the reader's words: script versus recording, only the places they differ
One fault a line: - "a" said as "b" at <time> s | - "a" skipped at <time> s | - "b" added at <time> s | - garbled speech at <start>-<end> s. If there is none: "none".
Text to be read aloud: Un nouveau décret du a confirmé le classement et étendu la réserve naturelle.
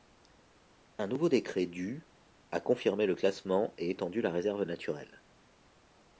none